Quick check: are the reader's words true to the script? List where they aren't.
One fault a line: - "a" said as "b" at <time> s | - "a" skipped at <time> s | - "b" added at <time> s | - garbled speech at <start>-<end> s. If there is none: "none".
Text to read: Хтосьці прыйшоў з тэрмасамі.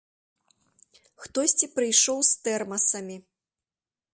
none